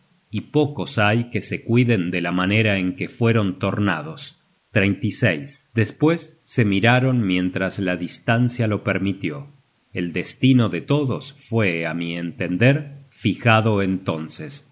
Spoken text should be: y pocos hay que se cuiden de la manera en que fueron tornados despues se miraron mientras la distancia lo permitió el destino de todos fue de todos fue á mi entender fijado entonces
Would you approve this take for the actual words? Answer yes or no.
no